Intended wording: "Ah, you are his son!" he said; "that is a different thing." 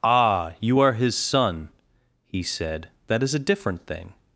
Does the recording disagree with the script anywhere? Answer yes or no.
no